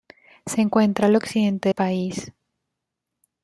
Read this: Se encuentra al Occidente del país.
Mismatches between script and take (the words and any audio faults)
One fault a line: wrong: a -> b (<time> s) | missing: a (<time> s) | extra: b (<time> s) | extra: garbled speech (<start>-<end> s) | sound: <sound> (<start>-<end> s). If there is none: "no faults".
missing: del (1.7 s)